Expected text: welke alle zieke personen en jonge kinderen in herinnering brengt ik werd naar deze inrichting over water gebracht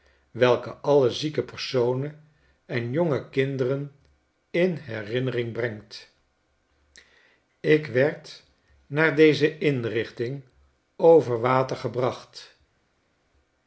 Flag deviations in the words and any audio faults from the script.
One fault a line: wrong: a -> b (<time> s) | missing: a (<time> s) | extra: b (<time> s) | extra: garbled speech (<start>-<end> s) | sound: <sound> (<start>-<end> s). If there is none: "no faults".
no faults